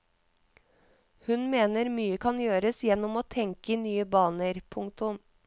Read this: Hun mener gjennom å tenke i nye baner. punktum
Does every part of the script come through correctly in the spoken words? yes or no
no